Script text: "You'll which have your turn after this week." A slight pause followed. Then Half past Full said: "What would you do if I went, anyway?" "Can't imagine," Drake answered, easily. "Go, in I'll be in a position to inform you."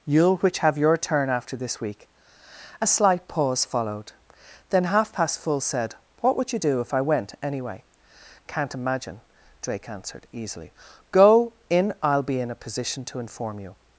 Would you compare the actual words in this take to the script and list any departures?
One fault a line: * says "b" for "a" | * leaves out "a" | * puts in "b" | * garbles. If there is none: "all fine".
all fine